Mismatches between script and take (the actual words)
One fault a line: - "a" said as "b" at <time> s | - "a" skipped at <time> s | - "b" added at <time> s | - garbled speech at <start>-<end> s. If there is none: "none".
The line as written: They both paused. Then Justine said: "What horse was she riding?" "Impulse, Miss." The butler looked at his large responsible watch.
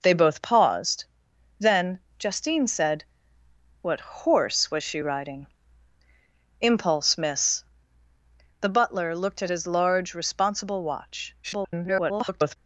- garbled speech at 11.4-12.6 s